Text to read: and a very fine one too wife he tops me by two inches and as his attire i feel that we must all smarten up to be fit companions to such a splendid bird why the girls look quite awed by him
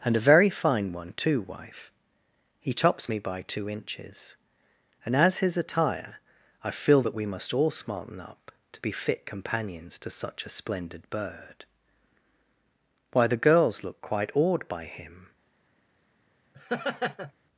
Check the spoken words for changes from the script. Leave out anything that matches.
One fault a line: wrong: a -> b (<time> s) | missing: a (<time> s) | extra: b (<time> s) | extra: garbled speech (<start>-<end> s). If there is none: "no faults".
no faults